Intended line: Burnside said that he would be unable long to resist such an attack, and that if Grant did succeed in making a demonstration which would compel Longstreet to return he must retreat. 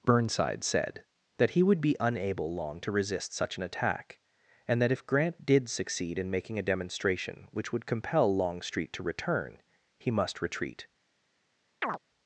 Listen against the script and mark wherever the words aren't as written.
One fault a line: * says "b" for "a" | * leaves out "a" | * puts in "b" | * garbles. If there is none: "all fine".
all fine